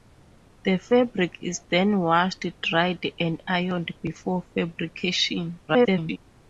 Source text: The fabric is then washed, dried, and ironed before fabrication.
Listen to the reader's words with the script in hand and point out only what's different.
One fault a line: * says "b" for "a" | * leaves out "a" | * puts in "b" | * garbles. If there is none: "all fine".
* garbles